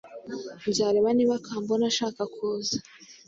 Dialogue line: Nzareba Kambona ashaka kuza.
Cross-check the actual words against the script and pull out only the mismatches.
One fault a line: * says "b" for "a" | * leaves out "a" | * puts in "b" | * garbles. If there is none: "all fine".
* puts in "niba"